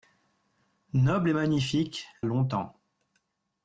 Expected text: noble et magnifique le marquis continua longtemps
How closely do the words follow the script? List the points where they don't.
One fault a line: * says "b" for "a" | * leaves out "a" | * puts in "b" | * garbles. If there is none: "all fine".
* leaves out "le marquis continua"